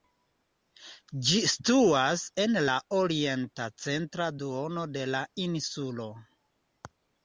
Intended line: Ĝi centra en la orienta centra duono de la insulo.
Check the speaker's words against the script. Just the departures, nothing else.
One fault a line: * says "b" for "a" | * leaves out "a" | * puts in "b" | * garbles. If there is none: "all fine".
* says "situas" for "centra"